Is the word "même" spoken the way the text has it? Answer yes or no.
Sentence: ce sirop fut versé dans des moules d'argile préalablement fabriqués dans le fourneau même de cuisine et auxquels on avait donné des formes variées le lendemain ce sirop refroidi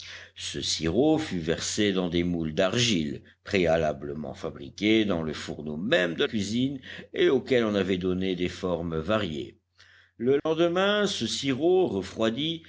yes